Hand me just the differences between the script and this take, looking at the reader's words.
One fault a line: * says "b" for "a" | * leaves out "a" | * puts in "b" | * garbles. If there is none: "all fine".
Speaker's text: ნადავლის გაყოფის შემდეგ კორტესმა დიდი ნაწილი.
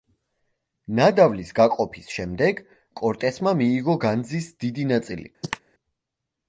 * puts in "მიიღო განძის"